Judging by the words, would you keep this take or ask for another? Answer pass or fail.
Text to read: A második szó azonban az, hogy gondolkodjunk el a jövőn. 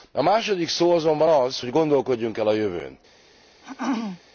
pass